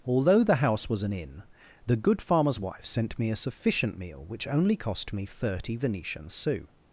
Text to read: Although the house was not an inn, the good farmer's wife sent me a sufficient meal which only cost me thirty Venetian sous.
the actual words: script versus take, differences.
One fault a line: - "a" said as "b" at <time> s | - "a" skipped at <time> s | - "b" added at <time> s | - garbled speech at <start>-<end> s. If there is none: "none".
- "not" skipped at 1.0 s